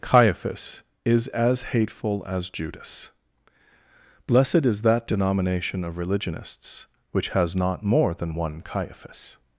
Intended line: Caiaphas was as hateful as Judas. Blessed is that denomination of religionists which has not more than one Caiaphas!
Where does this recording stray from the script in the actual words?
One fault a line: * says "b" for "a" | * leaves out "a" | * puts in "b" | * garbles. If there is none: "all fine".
* says "is" for "was"